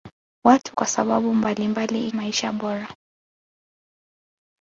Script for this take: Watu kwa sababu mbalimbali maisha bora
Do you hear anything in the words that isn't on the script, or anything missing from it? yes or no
no